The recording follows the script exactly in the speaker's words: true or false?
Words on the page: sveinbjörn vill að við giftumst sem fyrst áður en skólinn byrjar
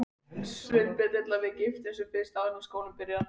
true